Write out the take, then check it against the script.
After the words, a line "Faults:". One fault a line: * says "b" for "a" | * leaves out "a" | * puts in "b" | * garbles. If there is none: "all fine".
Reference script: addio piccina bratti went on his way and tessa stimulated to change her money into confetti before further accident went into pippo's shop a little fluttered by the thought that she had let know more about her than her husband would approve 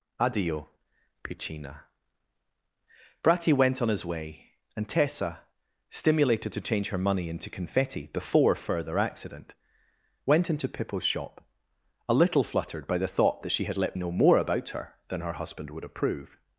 addio piccina bratti went on his way and tessa stimulated to change her money into confetti before further accident went into pippo's shop a little fluttered by the thought that she had let know more about her than her husband would approve
Faults:
all fine